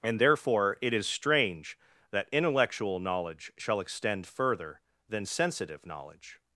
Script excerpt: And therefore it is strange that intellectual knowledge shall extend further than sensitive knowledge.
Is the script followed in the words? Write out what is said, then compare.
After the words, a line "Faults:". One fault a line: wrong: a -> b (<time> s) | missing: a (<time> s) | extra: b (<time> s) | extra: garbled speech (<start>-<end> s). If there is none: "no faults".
And therefore it is strange that intellectual knowledge shall extend further than sensitive knowledge.
Faults:
no faults